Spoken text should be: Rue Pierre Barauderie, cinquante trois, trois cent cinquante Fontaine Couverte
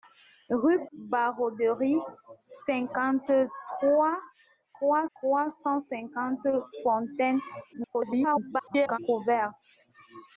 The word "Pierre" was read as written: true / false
false